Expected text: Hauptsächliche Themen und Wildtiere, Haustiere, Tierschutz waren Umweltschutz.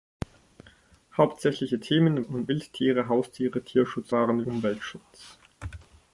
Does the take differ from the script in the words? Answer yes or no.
no